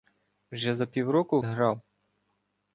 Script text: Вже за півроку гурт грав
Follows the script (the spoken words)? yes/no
no